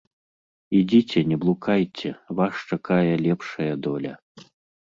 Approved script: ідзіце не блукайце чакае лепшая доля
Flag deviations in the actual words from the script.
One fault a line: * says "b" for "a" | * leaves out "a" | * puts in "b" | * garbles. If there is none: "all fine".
* puts in "вас"